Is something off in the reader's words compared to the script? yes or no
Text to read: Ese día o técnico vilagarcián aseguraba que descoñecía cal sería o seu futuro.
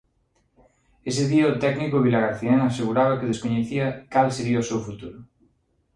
no